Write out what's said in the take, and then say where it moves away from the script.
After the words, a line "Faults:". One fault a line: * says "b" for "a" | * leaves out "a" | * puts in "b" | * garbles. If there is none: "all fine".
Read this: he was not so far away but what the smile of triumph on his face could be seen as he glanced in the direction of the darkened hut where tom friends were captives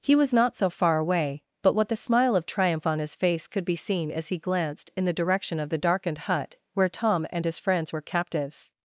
he was not so far away but what the smile of triumph on his face could be seen as he glanced in the direction of the darkened hut where tom and his friends were captives
Faults:
* puts in "and his"